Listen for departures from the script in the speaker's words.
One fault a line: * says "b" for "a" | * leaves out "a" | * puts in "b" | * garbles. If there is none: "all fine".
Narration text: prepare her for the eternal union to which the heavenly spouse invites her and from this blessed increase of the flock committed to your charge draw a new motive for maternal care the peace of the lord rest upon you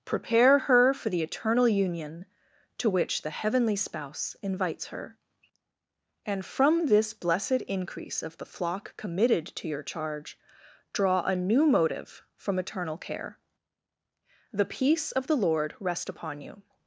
* says "from eternal" for "for maternal"